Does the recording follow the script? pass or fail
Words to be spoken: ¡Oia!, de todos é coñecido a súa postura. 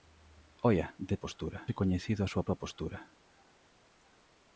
fail